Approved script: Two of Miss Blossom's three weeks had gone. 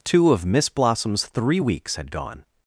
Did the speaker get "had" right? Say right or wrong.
right